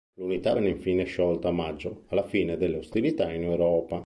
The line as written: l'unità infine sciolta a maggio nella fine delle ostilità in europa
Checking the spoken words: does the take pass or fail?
fail